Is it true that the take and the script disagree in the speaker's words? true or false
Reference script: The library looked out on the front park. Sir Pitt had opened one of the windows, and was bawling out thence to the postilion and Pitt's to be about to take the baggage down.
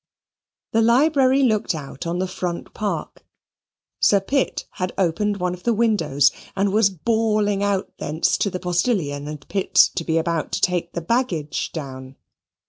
false